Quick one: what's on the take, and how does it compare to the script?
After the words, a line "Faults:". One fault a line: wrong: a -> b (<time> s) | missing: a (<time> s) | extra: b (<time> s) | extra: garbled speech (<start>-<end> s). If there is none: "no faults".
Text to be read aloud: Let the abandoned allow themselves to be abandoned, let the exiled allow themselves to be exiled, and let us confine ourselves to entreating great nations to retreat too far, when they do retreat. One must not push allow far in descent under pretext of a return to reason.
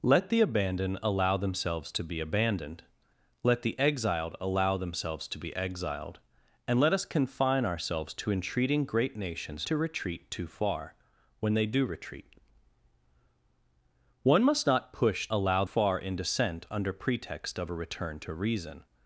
Let the abandoned allow themselves to be abandoned, let the exiled allow themselves to be exiled, and let us confine ourselves to entreating great nations to retreat too far, when they do retreat. One must not push allow far in descent under pretext of a return to reason.
Faults:
no faults